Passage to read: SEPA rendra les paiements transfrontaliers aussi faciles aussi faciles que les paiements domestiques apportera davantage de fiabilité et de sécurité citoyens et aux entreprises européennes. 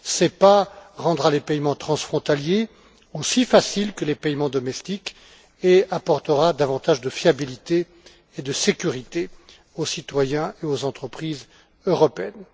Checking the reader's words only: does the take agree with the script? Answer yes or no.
no